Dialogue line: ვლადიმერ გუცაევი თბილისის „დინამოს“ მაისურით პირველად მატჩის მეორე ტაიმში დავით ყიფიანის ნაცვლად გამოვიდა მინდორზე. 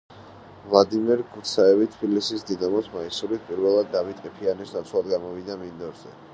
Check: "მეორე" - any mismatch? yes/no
yes